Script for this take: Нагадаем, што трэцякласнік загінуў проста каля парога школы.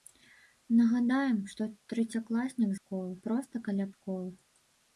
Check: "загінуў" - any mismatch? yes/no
yes